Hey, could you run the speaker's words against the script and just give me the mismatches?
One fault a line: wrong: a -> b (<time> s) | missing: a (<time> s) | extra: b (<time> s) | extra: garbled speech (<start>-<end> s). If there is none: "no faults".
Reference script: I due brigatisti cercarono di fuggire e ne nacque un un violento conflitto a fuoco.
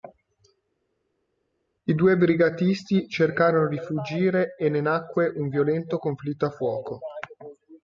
missing: un (5.5 s)